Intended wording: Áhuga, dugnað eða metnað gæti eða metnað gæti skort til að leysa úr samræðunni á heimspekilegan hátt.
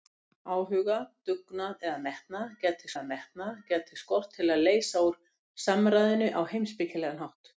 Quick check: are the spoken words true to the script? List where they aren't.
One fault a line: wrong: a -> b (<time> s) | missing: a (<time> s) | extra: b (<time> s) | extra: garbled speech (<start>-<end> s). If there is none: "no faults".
no faults